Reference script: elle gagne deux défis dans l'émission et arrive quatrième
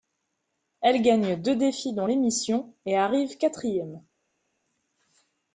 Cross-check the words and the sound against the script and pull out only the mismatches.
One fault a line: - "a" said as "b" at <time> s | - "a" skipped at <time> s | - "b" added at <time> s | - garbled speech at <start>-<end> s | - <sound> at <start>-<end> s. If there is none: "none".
none